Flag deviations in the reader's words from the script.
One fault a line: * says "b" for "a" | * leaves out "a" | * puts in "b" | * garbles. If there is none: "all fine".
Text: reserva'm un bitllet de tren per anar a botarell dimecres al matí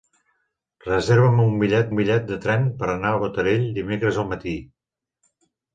* puts in "bitllet"